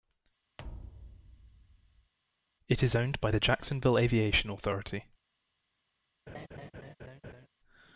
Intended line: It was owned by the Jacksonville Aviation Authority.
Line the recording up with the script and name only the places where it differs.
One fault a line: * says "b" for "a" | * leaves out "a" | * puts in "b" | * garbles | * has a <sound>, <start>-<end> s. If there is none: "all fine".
* has a thud, 0.6-2.1 s
* says "is" for "was"
* has a laugh, 6.3-7.5 s